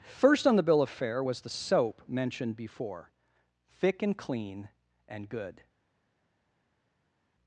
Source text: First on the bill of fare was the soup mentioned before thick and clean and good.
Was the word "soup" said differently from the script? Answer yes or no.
yes